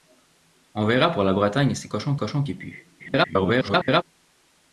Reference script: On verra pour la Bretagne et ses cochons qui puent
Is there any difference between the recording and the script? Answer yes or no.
yes